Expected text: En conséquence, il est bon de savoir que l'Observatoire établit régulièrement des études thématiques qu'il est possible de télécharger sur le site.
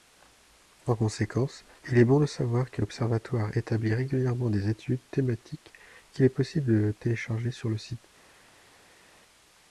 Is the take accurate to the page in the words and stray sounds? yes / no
yes